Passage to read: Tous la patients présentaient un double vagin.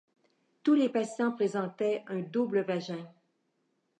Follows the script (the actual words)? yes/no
no